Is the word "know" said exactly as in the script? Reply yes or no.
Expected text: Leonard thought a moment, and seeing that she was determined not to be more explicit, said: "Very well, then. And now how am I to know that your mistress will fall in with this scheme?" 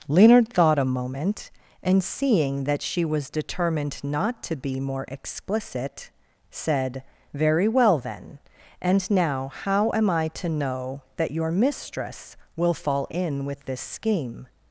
yes